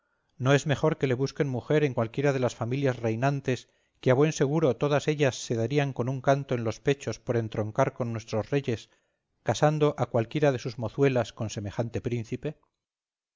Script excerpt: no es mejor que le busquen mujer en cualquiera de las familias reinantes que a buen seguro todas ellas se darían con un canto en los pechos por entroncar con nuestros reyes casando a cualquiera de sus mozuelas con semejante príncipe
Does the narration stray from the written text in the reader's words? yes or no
no